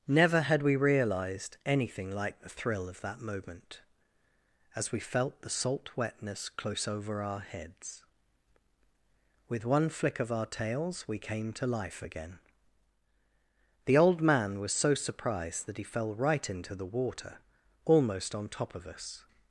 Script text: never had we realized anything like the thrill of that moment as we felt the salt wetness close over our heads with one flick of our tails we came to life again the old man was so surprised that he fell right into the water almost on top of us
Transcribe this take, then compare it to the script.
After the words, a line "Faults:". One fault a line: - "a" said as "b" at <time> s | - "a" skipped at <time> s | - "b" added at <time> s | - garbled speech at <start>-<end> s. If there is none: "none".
never had we realized anything like the thrill of that moment as we felt the salt wetness close over our heads with one flick of our tails we came to life again the old man was so surprised that he fell right into the water almost on top of us
Faults:
none